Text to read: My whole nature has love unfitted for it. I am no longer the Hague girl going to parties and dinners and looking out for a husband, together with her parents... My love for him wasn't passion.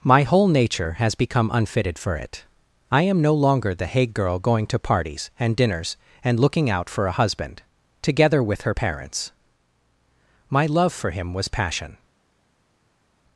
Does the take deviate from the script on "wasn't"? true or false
true